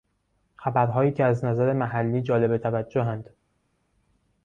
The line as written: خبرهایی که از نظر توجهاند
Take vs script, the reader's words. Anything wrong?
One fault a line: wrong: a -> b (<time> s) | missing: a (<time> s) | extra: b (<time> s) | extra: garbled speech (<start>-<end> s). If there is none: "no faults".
extra: محلی جالب (1.7 s)